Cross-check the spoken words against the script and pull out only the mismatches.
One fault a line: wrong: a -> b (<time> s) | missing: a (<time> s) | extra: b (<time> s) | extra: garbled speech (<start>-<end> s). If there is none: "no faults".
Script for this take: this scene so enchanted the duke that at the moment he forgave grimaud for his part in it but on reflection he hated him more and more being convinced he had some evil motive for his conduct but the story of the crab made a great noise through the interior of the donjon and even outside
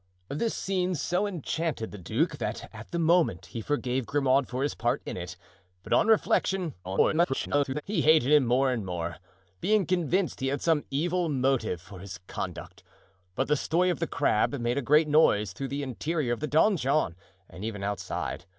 extra: garbled speech (6.8-7.8 s)